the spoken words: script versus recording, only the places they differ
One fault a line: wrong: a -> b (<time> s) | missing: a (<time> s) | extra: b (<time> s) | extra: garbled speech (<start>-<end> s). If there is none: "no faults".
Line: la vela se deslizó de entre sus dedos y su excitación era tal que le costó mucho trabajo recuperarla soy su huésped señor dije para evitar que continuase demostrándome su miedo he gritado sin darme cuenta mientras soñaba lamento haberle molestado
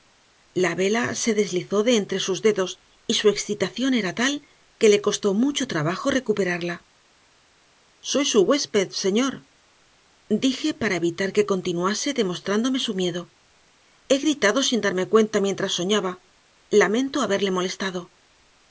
no faults